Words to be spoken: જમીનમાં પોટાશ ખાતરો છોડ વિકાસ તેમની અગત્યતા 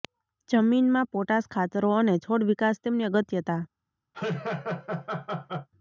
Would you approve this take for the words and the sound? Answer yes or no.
no